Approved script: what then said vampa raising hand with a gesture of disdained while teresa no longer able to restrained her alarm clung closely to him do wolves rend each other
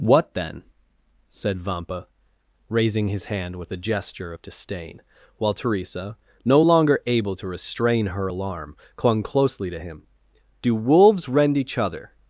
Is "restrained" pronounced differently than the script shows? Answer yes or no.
yes